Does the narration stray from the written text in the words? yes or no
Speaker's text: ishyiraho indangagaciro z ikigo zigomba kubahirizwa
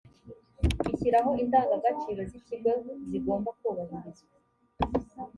no